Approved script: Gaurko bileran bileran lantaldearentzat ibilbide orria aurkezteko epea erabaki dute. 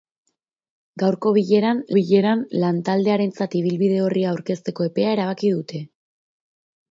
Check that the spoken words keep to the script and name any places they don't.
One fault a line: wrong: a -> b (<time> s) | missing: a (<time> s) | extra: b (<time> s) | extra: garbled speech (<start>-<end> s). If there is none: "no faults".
no faults